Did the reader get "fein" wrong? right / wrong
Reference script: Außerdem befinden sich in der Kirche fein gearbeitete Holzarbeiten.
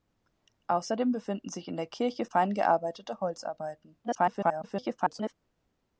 right